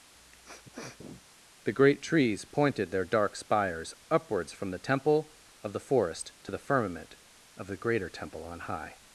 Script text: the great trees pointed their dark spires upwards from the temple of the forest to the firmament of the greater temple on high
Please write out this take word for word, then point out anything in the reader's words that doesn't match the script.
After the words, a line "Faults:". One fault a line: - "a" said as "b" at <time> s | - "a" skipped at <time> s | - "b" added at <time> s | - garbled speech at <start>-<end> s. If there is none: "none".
the great trees pointed their dark spires upwards from the temple of the forest to the firmament of the greater temple on high
Faults:
none